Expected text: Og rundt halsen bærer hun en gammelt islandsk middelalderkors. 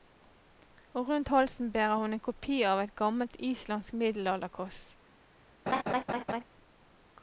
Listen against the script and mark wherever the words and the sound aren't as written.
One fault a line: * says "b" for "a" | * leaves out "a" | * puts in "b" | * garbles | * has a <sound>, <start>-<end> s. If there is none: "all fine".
* puts in "kopi av et"
* has a laugh, 5.7-6.4 s